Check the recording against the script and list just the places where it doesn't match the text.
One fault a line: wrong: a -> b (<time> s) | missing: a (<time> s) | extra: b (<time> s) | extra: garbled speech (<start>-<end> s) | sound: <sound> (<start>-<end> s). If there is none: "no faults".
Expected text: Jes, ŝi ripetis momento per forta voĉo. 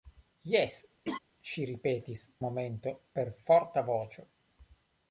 sound: laugh (1.0-1.2 s)